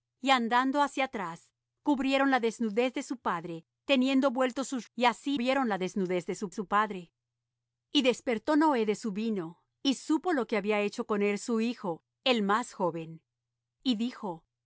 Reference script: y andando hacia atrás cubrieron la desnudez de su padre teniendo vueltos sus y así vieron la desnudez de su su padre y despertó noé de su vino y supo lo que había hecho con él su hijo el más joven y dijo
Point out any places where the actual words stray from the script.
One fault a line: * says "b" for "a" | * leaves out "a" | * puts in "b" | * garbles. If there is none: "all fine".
all fine